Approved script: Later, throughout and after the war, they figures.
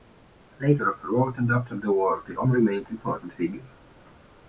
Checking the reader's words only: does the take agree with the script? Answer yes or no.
no